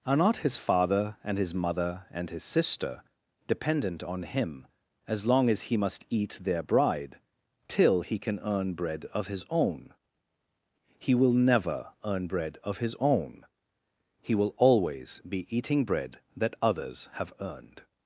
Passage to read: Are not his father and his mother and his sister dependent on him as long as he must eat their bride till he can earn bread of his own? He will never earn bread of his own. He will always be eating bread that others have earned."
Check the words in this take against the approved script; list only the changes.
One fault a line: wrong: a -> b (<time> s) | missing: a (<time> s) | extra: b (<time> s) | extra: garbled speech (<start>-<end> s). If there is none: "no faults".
no faults